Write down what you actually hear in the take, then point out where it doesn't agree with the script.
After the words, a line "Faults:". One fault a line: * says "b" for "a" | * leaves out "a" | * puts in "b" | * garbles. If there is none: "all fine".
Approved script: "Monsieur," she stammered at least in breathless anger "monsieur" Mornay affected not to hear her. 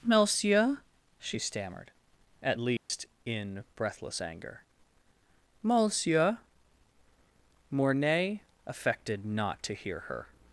"Monsieur," she stammered at least in breathless anger "monsieur" Mornay affected not to hear her.
Faults:
all fine